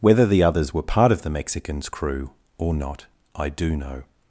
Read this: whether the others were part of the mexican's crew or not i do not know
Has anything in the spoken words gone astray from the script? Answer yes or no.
yes